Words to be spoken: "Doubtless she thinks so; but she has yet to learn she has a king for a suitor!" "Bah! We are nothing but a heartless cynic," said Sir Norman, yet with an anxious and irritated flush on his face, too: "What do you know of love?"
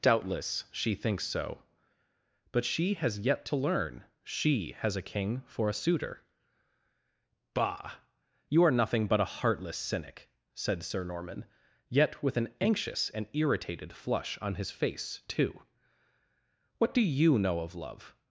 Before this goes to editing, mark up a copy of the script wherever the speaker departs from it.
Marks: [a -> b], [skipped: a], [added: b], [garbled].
"Doubtless she thinks so; but she has yet to learn she has a king for a suitor!" "Bah! [We -> You] are nothing but a heartless cynic," said Sir Norman, yet with an anxious and irritated flush on his face, too: "What do you know of love?"